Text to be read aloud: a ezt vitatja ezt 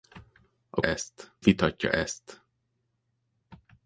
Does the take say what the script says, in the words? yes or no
yes